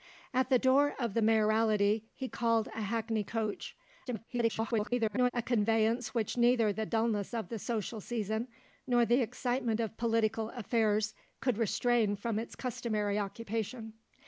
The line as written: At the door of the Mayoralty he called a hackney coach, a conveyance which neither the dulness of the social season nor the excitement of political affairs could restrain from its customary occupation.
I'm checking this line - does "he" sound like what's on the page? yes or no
yes